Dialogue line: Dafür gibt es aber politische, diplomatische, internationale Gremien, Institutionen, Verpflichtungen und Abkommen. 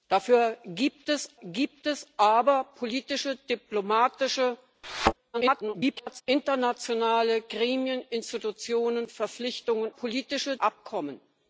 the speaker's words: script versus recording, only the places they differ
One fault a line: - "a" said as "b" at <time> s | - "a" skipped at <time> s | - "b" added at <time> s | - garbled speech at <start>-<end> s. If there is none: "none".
- "gibt es" added at 1.4 s
- garbled speech at 5.3-6.2 s
- "und" said as "politische" at 10.0 s